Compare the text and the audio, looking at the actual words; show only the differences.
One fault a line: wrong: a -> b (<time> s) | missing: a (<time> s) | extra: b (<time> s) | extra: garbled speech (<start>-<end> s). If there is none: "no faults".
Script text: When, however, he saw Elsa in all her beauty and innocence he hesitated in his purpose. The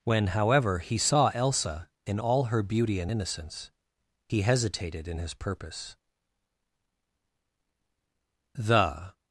no faults